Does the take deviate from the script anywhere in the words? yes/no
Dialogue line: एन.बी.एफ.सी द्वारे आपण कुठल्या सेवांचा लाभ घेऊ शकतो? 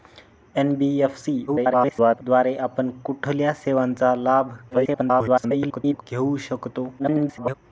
yes